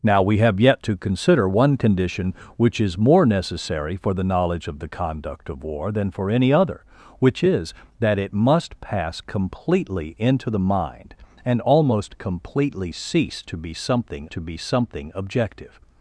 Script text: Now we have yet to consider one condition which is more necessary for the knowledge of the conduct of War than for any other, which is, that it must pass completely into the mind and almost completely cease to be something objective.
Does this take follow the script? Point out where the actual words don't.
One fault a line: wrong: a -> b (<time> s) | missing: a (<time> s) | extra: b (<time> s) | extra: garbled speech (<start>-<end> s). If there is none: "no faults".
extra: to be something (14.3 s)